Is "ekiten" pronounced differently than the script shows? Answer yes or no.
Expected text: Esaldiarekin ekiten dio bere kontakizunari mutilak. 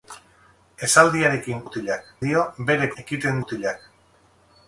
yes